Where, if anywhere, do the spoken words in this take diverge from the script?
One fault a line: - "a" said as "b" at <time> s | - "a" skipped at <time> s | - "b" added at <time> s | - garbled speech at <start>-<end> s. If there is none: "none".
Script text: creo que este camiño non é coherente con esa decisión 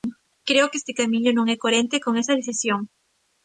none